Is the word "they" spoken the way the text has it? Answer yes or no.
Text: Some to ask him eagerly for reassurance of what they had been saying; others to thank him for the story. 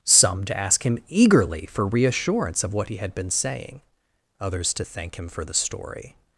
no